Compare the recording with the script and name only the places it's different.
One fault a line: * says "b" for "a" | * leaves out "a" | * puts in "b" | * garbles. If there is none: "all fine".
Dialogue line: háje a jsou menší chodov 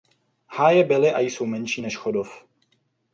* puts in "byly"
* puts in "než"